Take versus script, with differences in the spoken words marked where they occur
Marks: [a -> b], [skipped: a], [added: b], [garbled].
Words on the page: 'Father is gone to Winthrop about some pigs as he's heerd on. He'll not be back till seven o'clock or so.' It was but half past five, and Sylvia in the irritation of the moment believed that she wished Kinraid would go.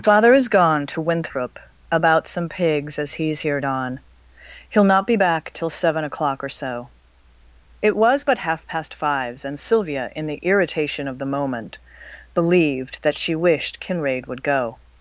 'Father is gone to Winthrop about some pigs as he's heerd on. He'll not be back till seven o'clock or so.' It was but half past [five, -> fives] and Sylvia in the irritation of the moment believed that she wished Kinraid would go.